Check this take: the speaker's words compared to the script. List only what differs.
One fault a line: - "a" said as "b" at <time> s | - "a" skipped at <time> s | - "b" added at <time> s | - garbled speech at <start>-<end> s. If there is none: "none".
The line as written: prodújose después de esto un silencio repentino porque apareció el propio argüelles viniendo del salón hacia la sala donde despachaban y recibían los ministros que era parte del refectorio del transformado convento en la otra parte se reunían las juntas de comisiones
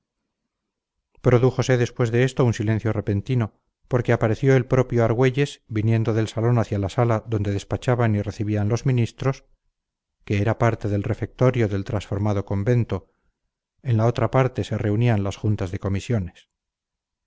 none